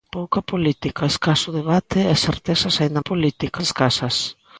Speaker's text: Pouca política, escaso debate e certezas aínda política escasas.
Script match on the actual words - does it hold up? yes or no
yes